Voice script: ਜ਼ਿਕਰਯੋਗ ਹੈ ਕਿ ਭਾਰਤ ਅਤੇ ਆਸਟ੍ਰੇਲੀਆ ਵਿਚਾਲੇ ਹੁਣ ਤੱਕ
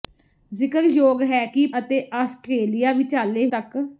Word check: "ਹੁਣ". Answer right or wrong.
wrong